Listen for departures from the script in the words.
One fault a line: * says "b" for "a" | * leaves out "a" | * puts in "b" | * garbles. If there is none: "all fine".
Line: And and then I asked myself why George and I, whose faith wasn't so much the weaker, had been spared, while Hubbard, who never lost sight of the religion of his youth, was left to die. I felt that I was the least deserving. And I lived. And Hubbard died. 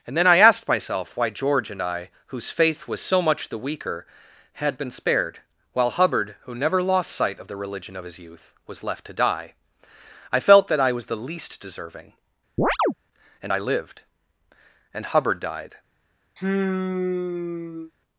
* leaves out "and"
* says "was" for "wasn't"